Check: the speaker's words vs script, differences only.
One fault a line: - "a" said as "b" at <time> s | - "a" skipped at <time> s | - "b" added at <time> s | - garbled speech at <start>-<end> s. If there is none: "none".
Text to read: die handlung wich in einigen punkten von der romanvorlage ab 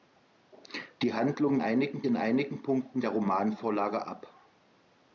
- "wich" said as "einigen" at 1.6 s
- "von" skipped at 3.0 s